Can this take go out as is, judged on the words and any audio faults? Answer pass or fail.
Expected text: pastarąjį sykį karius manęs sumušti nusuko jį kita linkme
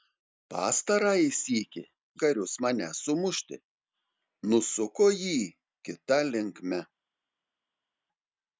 pass